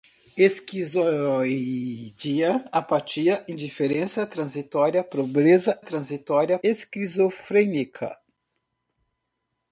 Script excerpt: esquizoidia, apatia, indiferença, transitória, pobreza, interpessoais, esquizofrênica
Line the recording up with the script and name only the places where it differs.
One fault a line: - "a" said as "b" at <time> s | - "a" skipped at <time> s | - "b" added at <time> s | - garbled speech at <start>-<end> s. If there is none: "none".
- "interpessoais" said as "transitória" at 5.8 s